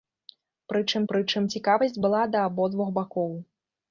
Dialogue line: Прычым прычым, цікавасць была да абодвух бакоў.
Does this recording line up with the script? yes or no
yes